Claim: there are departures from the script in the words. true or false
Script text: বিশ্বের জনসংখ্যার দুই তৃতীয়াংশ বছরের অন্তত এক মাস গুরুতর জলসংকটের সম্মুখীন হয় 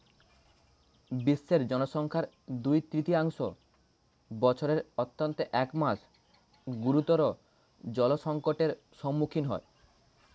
false